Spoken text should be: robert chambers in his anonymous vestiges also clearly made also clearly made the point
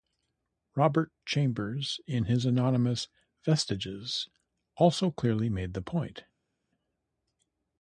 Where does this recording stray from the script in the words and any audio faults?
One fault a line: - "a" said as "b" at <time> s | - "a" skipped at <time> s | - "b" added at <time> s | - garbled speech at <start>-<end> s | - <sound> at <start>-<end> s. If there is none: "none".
- "also clearly made" skipped at 5.7 s